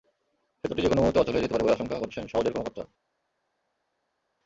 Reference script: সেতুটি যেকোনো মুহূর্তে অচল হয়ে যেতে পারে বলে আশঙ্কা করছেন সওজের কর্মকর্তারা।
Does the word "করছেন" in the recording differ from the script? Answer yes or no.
no